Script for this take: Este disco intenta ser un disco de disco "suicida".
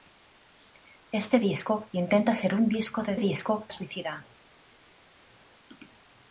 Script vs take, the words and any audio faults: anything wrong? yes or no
no